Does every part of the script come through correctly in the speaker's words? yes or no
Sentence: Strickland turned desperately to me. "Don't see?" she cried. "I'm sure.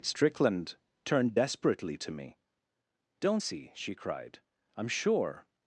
yes